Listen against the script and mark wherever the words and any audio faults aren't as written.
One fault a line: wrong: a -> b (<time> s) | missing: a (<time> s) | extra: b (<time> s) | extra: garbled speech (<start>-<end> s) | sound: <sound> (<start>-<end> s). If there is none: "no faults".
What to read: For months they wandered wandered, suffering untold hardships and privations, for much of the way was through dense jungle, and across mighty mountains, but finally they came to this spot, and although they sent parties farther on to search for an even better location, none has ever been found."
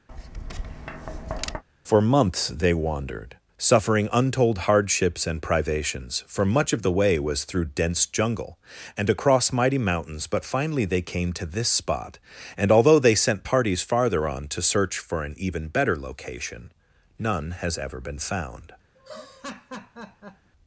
sound: tap (0.1-1.6 s)
missing: wandered (3.4 s)
sound: laugh (19.0-20.5 s)